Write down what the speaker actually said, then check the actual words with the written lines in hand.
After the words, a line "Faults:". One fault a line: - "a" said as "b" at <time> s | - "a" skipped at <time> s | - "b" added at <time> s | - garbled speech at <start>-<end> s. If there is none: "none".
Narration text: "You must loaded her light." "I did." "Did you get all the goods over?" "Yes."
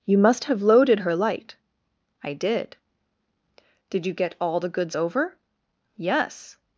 "You must have loaded her light." "I did." "Did you get all the goods over?" "Yes."
Faults:
- "have" added at 0.5 s